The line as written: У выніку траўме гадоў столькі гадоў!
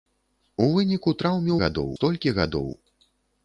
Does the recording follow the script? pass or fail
pass